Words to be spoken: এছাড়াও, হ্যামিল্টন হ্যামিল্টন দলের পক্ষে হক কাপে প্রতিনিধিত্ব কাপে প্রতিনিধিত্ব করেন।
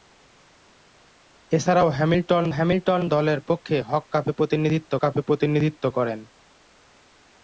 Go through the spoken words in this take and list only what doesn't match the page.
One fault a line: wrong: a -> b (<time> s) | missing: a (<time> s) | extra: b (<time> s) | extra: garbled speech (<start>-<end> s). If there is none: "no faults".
no faults